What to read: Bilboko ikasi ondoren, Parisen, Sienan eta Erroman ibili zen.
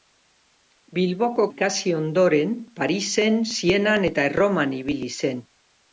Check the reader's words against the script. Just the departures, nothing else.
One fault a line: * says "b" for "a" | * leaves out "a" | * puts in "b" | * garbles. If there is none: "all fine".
all fine